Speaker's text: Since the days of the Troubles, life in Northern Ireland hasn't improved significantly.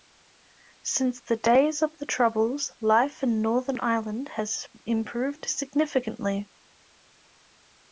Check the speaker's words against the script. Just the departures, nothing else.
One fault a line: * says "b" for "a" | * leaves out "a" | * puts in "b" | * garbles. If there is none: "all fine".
* says "has" for "hasn't"